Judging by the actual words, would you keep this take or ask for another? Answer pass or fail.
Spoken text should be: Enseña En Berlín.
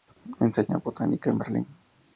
fail